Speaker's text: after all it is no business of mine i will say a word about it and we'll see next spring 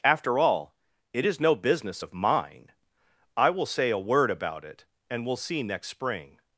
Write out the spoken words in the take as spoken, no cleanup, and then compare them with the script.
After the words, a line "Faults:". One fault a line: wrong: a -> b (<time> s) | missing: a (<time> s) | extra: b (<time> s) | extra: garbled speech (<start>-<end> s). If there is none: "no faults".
after all it is no business of mine i will say a word about it and we'll see next spring
Faults:
no faults